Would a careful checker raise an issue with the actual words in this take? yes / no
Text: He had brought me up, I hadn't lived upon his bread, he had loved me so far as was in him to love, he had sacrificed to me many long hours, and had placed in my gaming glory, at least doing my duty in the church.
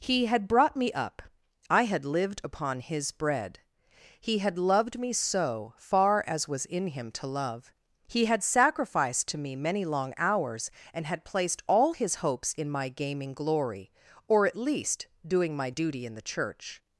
yes